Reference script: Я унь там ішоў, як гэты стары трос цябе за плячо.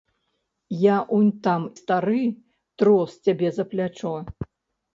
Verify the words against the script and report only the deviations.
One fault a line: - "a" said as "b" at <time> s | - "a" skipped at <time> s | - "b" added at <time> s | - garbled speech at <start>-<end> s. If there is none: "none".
- "ішоў як гэты" skipped at 1.7 s